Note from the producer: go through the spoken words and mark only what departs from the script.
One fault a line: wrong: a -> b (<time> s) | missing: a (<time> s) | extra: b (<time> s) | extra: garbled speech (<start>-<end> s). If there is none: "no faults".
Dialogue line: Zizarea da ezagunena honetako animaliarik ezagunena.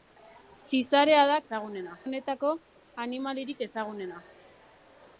no faults